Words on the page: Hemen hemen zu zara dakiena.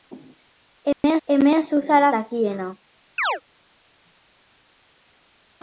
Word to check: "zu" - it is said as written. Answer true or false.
true